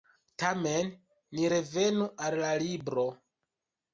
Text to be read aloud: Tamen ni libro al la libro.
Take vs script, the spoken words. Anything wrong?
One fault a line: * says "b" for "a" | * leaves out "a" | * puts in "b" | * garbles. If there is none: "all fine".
* says "revenu" for "libro"